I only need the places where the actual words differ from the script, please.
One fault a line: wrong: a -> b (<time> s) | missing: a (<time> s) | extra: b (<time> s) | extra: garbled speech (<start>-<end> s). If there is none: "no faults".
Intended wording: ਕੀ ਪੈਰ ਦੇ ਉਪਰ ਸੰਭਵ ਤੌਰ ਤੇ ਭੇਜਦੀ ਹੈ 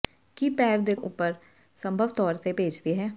no faults